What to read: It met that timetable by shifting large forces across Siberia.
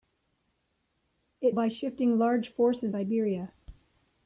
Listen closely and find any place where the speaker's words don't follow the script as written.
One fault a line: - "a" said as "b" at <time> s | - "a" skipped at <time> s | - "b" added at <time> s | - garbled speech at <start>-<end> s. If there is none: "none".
- "met that timetable" skipped at 1.6 s
- "across" skipped at 2.9 s